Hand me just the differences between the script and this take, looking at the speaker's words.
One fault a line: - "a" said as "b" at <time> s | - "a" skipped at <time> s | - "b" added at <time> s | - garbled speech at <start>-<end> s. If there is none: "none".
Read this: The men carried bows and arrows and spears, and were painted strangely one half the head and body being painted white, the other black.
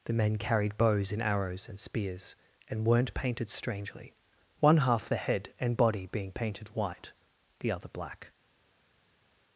- "were" said as "weren't" at 2.9 s